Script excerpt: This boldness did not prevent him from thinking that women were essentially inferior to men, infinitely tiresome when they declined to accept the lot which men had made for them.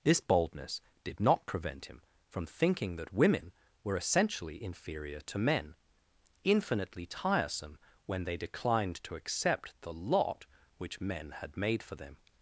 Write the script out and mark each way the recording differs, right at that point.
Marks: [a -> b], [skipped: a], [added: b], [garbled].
This boldness did not prevent him from thinking that women were essentially inferior to men, infinitely tiresome when they declined to accept the lot which men had made for them.